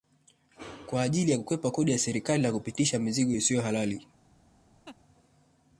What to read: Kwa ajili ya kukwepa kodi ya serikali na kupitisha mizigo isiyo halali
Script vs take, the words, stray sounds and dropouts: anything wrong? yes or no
yes